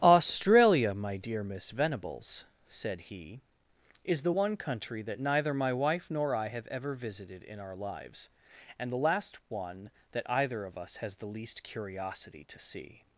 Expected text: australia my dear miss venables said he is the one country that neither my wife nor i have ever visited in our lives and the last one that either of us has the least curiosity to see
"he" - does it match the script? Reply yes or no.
yes